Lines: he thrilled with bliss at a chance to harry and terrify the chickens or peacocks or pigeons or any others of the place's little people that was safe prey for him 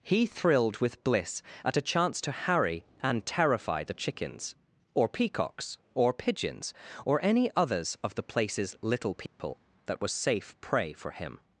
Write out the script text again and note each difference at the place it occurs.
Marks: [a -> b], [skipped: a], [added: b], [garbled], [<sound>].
he thrilled with bliss at a chance to harry and terrify the chickens or peacocks or pigeons or any others of the place's little people [dropout] that was safe prey for him